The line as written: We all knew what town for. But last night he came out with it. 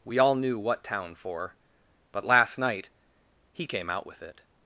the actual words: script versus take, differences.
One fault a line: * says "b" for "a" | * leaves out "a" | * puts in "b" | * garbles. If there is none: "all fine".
all fine